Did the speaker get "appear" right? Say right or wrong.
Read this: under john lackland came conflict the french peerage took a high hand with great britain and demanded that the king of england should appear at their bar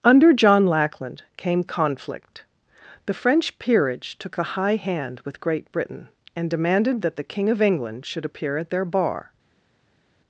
right